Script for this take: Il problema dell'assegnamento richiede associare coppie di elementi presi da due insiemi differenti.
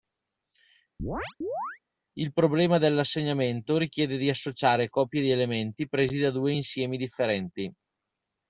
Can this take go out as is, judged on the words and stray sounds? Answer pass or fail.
fail